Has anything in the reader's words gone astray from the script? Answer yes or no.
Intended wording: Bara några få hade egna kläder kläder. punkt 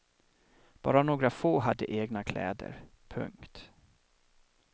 yes